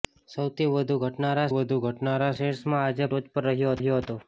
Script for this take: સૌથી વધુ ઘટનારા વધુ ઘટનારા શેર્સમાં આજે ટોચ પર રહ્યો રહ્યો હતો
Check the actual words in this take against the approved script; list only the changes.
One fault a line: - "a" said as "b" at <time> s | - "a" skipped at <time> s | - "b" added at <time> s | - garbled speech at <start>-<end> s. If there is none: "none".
none